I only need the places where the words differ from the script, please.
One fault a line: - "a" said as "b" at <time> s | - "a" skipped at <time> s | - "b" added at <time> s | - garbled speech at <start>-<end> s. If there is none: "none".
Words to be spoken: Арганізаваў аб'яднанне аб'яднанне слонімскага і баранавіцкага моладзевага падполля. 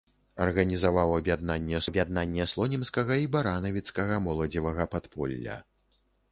none